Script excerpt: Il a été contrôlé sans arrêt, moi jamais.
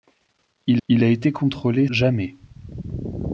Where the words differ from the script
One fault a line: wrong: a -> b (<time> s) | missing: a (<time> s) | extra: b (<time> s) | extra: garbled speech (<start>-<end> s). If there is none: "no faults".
extra: il (0.9 s)
missing: sans arrêt moi (1.9 s)